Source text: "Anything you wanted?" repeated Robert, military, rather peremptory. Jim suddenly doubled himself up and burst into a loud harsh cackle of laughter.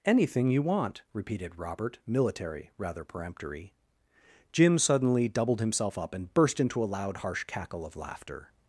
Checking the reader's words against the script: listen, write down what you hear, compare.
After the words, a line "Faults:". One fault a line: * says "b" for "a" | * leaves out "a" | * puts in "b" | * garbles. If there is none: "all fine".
"Anything you want?" repeated Robert, military, rather peremptory. Jim suddenly doubled himself up and burst into a loud harsh cackle of laughter.
Faults:
* says "want" for "wanted"